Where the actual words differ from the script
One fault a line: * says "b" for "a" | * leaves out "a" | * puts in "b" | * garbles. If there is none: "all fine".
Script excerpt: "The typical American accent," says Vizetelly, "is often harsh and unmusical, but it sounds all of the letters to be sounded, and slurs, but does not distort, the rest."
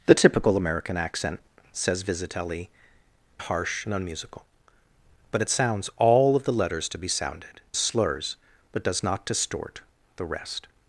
* leaves out "is often"
* leaves out "and"